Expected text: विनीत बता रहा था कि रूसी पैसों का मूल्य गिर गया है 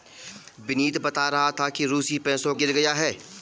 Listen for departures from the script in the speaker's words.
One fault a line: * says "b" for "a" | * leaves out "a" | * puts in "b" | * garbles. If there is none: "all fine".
* leaves out "का मूल्य"